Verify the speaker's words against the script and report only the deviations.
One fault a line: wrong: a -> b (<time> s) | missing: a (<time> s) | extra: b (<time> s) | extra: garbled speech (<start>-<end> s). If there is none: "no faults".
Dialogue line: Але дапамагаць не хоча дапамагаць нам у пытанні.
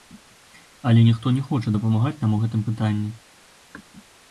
wrong: дапамагаць -> ніхто (1.1 s)
extra: гэтым (2.5 s)